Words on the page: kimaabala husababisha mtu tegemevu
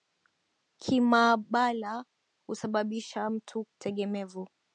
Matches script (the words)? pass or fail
pass